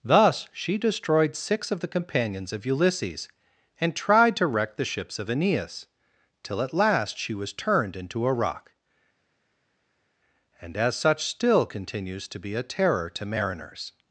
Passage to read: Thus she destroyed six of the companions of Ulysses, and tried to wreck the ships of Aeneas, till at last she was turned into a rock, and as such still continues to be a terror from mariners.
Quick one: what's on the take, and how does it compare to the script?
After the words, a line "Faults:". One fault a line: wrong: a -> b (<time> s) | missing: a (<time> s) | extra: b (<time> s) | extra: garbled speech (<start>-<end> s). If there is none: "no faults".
Thus she destroyed six of the companions of Ulysses, and tried to wreck the ships of Aeneas, till at last she was turned into a rock, and as such still continues to be a terror to mariners.
Faults:
wrong: from -> to (13.1 s)